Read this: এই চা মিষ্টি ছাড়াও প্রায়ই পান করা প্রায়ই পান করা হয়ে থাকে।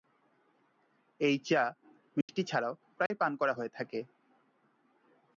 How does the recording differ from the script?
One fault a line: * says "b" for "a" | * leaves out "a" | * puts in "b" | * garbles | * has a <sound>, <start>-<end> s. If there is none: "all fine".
* has a dropout, 2.2-2.3 s
* has a dropout, 3.1-3.1 s
* leaves out "প্রায়ই পান করা"